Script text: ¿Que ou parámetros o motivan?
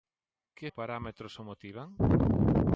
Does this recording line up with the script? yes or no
yes